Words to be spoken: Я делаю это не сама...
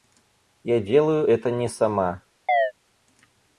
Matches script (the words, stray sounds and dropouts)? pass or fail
fail